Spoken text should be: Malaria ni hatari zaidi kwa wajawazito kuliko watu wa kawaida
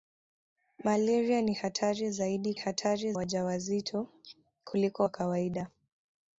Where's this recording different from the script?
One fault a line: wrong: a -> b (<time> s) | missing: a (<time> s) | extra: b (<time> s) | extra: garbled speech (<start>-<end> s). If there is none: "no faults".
wrong: kwa -> hatari (2.5 s)
missing: watu (5.0 s)